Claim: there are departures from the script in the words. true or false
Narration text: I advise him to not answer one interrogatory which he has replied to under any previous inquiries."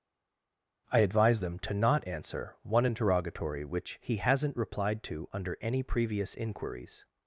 true